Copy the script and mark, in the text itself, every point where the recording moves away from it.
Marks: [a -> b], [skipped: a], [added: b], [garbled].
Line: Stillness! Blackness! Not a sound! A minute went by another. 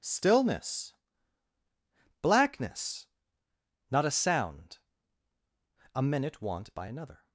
Stillness! Blackness! Not a sound! A minute [went -> want] by another.